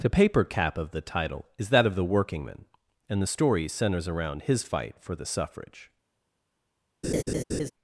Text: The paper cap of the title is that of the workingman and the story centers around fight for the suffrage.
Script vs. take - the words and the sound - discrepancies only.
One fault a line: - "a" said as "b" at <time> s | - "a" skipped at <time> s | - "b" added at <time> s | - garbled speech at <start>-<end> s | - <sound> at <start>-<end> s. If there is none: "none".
- "his" added at 4.4 s
- laugh at 7.0-7.7 s